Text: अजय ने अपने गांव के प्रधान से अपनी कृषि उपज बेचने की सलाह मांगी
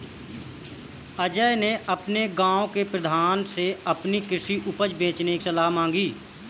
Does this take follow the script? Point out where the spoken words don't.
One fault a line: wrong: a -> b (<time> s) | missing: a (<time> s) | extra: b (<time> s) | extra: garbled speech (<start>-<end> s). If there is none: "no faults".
missing: की (5.4 s)